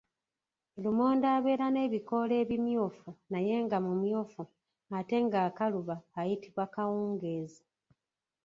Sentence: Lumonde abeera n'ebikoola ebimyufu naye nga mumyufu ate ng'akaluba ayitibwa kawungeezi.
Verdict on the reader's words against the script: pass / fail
pass